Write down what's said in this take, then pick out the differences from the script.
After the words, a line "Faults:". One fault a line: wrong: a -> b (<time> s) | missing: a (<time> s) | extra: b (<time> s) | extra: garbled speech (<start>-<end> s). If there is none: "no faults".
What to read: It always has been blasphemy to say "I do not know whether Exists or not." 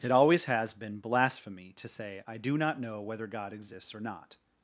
It always has been blasphemy to say "I do not know whether God exists or not."
Faults:
extra: God (3.3 s)